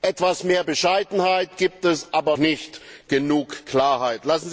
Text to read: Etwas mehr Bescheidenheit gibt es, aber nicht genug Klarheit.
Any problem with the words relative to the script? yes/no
no